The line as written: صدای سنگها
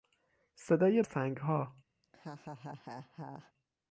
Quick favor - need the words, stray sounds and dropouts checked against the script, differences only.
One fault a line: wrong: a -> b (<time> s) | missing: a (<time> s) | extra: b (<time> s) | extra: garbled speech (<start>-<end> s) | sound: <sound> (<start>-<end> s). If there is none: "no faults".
sound: laugh (2.0-3.5 s)